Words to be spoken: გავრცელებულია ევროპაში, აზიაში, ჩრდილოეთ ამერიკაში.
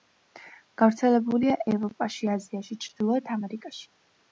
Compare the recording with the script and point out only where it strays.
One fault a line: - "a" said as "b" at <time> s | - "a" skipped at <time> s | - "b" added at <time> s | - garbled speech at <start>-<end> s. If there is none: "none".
none